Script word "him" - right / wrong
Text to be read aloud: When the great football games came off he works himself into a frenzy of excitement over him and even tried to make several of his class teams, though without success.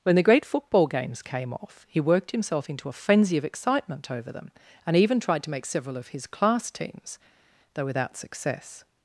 wrong